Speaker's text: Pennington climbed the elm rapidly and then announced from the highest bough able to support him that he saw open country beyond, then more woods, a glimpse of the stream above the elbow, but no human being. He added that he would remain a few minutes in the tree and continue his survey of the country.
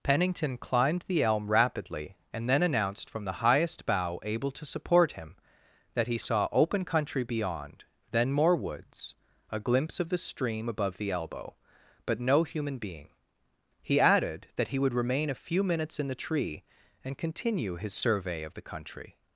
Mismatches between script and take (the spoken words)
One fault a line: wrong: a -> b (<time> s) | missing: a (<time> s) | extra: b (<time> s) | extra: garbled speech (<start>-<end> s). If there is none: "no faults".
no faults